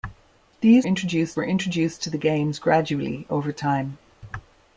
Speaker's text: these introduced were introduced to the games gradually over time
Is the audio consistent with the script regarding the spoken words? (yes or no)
yes